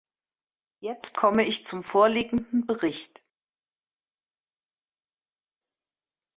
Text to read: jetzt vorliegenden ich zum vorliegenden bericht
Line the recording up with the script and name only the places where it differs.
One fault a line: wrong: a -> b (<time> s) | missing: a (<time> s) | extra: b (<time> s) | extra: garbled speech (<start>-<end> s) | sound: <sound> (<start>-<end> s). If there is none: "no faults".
wrong: vorliegenden -> komme (1.2 s)